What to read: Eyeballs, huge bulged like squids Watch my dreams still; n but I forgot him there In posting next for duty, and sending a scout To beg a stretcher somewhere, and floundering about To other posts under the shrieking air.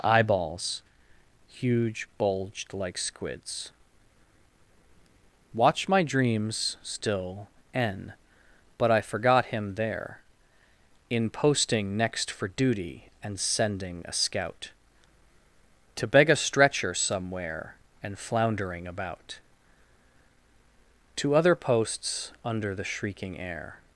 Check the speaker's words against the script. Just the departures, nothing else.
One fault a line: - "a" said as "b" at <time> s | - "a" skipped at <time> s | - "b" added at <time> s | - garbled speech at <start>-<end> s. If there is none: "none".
none